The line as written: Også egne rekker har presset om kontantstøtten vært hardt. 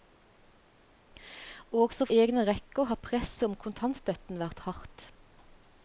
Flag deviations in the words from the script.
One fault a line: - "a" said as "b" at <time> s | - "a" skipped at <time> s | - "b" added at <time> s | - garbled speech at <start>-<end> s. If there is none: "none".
none